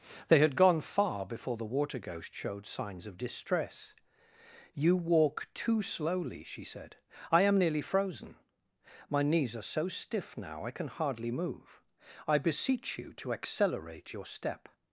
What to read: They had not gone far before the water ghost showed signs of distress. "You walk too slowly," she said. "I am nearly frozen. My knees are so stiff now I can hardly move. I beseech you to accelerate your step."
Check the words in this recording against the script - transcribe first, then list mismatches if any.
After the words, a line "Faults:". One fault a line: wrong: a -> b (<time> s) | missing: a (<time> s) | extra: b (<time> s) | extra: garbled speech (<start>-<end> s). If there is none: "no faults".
They had gone far before the water ghost showed signs of distress. "You walk too slowly," she said. "I am nearly frozen. My knees are so stiff now I can hardly move. I beseech you to accelerate your step."
Faults:
missing: not (0.6 s)